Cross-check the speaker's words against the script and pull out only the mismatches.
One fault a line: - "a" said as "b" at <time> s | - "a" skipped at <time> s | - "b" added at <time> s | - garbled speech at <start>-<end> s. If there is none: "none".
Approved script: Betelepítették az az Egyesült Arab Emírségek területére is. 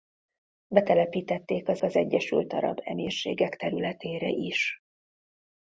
none